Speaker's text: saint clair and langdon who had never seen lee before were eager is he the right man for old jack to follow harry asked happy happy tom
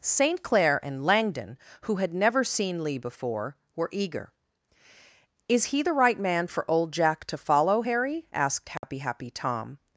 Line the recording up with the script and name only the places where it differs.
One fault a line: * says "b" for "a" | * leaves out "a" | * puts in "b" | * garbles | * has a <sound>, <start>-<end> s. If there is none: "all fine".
* has a dropout, 8.8-8.8 s